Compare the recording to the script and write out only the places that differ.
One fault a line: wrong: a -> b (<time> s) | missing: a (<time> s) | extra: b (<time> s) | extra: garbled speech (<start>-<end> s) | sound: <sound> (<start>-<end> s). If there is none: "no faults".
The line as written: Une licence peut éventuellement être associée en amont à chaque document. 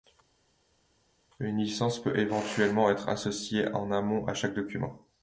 no faults